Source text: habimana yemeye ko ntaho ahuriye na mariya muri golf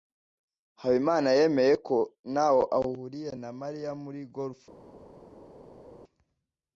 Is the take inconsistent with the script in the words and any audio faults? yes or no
no